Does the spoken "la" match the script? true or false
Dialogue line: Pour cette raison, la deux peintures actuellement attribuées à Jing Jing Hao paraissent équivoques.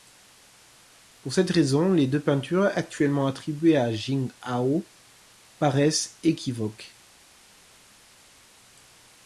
false